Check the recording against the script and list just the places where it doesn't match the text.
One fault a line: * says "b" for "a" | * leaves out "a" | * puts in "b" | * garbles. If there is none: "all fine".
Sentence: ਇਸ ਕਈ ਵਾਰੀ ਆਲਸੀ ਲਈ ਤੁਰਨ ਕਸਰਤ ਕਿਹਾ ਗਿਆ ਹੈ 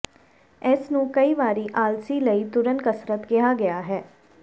* puts in "ਨੂੰ"